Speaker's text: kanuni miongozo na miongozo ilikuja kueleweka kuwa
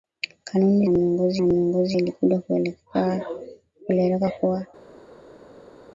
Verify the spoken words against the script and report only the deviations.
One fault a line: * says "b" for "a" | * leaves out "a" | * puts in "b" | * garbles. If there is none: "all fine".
all fine